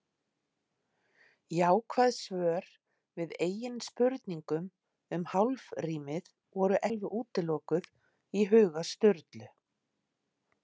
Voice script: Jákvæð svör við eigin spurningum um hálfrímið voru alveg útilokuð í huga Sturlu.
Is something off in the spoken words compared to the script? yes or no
no